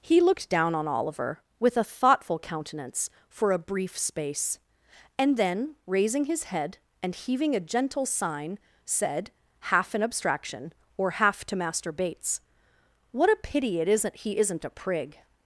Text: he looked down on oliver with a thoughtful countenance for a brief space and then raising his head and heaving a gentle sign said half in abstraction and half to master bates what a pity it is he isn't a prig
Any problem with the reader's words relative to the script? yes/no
yes